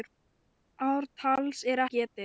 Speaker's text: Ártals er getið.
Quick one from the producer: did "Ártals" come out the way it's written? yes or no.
yes